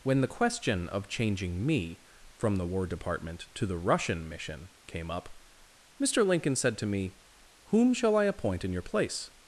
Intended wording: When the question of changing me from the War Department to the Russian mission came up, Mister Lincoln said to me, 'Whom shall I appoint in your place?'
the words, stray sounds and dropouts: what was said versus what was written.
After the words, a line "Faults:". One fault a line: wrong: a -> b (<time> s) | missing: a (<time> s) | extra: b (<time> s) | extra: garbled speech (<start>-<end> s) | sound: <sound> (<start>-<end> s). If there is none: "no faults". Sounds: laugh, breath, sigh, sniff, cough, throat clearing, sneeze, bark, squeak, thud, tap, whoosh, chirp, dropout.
When the question of changing me from the War Department to the Russian mission came up, Mister Lincoln said to me, 'Whom shall I appoint in your place?'
Faults:
no faults